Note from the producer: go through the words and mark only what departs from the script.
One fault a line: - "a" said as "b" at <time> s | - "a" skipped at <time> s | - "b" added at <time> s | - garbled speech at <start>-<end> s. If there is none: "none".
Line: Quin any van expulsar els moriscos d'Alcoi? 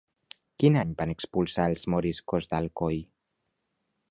none